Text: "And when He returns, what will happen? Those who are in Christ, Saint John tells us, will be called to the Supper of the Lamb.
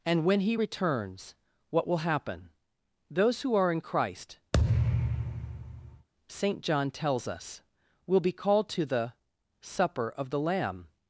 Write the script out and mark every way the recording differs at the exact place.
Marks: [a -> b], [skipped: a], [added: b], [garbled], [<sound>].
"And when He returns, what will happen? Those who are in Christ, [thud] Saint John tells us, will be called to the Supper of the Lamb.